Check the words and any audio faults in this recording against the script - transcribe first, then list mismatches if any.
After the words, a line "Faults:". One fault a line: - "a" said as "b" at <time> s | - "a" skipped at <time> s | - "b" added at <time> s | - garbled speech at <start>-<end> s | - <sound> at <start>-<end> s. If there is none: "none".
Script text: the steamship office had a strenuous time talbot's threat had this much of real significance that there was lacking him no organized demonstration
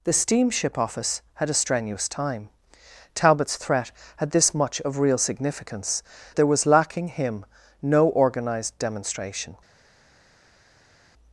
the steamship office had a strenuous time talbot's threat had this much of real significance there was lacking him no organized demonstration
Faults:
- "that" skipped at 6.0 s